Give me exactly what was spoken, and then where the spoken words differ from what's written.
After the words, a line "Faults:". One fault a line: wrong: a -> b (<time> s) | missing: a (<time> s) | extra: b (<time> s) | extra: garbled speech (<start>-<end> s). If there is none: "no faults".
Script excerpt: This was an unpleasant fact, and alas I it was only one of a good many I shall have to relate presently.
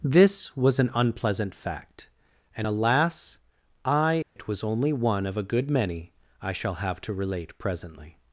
This was an unpleasant fact, and alas I it was only one of a good many I shall have to relate presently.
Faults:
no faults